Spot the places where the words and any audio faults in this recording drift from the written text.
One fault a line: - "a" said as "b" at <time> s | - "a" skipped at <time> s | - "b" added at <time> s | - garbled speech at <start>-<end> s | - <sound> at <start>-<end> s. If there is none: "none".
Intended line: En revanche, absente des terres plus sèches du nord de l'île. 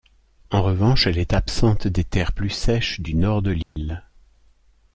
- "elle est" added at 1.1 s
- dropout at 3.6-3.8 s